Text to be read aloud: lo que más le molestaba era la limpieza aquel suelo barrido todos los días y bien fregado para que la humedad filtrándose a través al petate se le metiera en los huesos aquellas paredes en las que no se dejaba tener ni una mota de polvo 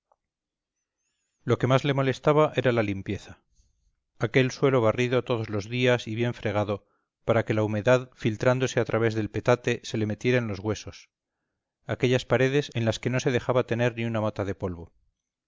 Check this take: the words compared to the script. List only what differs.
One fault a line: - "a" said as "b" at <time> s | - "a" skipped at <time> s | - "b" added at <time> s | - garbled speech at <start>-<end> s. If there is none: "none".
- "al" said as "del" at 9.1 s